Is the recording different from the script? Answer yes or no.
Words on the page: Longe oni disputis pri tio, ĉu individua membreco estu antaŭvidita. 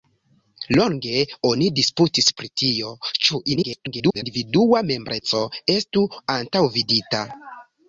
yes